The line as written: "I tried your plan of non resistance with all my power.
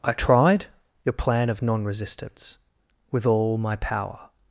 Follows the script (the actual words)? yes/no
yes